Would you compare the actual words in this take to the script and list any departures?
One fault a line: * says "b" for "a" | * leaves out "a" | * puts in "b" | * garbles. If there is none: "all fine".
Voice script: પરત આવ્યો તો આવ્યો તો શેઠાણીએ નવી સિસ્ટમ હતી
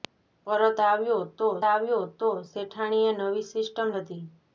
all fine